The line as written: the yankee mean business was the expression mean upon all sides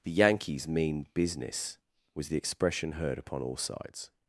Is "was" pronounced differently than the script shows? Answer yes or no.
no